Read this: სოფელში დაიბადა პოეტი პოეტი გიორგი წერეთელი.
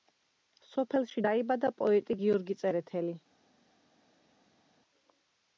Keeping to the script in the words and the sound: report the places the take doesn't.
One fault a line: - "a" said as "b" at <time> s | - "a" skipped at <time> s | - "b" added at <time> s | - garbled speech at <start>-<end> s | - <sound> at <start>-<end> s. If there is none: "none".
- "პოეტი" skipped at 2.2 s